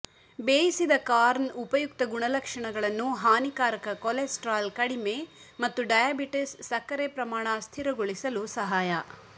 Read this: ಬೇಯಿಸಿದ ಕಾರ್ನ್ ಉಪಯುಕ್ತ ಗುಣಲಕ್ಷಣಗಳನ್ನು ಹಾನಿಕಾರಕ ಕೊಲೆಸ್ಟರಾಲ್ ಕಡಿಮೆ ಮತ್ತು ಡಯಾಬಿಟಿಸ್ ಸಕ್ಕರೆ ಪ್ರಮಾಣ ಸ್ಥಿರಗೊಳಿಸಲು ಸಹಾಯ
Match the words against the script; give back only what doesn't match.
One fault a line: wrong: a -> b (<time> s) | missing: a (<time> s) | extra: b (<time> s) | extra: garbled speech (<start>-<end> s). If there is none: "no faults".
no faults